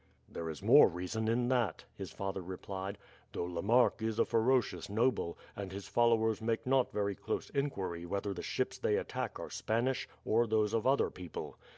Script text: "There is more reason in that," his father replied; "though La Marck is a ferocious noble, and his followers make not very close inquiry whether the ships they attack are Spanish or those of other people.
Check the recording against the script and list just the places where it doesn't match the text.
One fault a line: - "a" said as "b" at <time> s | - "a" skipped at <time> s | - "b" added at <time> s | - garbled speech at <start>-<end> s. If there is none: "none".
none